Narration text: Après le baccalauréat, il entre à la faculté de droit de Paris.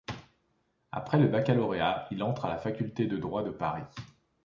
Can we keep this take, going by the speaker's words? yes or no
yes